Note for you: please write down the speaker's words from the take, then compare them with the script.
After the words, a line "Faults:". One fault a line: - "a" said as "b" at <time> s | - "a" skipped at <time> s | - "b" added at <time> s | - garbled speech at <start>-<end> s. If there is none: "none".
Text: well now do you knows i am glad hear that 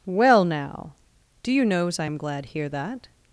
well now do you knows i am glad hear that
Faults:
none